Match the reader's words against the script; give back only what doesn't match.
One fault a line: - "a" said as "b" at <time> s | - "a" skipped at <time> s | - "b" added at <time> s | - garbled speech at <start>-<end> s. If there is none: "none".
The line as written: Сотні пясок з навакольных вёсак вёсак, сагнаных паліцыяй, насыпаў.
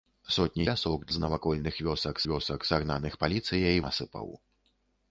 none